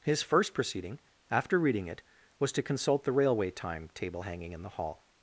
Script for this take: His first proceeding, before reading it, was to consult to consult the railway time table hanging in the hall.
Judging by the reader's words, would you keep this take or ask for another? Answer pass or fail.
fail